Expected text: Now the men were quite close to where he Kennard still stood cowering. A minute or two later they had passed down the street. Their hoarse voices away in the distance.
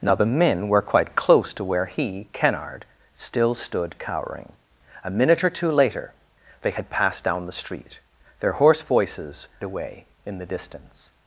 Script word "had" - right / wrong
right